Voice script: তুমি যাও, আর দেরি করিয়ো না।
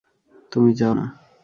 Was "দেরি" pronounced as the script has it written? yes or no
no